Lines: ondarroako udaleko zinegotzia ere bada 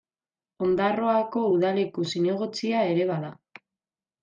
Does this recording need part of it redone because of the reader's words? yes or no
no